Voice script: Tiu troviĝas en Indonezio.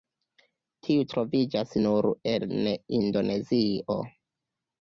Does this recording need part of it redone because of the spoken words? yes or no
yes